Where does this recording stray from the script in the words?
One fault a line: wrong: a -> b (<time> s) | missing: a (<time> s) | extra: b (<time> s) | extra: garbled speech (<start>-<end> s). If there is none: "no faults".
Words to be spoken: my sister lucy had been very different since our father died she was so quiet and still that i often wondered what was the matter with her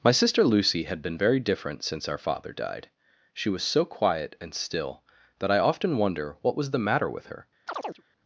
wrong: wondered -> wonder (6.0 s)